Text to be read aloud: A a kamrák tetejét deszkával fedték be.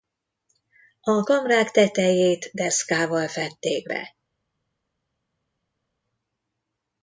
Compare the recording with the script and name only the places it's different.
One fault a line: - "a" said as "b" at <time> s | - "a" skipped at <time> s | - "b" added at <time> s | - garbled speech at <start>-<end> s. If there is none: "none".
- "a" skipped at 1.2 s